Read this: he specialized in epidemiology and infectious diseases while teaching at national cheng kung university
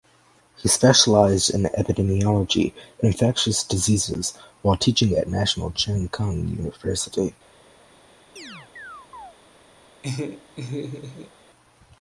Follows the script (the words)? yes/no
yes